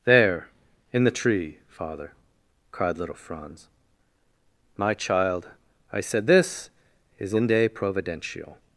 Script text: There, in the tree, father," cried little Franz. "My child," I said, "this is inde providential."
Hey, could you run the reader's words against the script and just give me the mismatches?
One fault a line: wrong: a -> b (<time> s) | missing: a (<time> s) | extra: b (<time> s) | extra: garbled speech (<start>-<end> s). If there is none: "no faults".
no faults